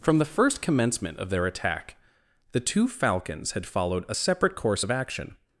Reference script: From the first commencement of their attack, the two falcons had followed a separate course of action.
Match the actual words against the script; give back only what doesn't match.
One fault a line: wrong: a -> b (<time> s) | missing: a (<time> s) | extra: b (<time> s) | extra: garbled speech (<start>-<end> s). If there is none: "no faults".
no faults